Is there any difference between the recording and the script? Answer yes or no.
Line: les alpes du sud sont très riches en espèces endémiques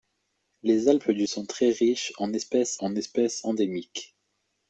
yes